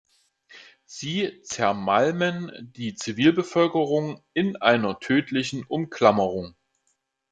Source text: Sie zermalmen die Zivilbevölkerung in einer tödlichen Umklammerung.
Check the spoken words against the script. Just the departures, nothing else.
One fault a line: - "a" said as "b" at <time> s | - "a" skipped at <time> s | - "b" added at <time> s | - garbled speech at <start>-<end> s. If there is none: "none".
none